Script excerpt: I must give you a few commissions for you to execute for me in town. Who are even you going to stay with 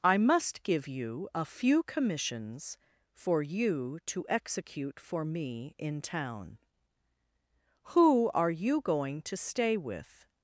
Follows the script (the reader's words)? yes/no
no